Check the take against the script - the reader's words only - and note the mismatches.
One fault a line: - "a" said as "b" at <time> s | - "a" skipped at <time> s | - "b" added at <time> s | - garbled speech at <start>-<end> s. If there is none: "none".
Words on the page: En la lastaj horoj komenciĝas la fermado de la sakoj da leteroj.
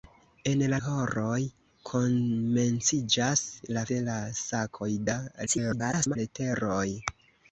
- "lastaj" skipped at 0.8 s
- "fermado" skipped at 3.8 s
- garbled speech at 5.5-6.2 s